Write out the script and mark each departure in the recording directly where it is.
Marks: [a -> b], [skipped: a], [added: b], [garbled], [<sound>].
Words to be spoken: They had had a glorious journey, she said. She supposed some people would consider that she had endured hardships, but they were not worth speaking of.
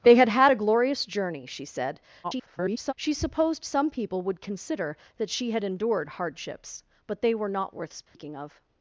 They had had a glorious journey, she said. [garbled] She supposed some people would consider that she had endured hardships, but they were not worth speaking [dropout] of.